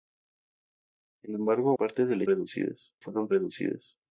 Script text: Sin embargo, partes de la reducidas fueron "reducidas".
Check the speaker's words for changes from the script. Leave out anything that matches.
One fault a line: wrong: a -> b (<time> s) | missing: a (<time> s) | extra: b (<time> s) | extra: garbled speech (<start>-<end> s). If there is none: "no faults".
no faults